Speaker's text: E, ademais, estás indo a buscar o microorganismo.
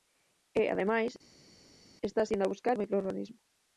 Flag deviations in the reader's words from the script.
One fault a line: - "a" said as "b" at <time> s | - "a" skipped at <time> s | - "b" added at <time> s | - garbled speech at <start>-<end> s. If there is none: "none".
none